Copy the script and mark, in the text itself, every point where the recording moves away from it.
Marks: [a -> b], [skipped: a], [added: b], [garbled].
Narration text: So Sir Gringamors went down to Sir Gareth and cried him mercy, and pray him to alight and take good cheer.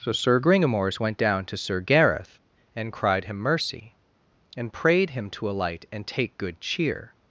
So Sir Gringamors went down to Sir Gareth and cried him mercy, and [pray -> prayed] him to alight and take good cheer.